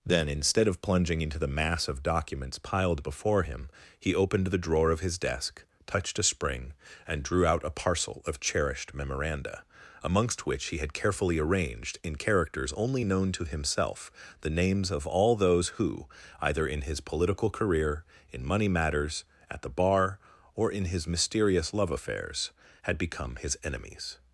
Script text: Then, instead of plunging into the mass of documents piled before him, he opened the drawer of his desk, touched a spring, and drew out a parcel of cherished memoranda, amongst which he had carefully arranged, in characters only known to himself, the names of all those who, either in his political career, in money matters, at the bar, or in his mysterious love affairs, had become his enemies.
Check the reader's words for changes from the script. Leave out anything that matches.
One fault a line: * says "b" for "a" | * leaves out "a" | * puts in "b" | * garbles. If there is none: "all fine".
all fine